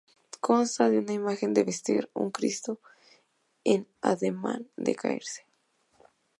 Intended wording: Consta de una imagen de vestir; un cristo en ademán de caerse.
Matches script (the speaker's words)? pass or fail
pass